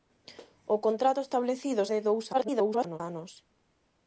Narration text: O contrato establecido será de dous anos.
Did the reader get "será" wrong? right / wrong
wrong